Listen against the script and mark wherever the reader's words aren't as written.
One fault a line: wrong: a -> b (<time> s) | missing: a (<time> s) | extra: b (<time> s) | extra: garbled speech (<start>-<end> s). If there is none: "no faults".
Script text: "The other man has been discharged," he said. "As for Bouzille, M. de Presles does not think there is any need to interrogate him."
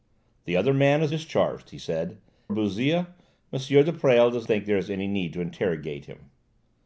missing: been (1.1 s)
missing: As for (2.2 s)
missing: not (4.5 s)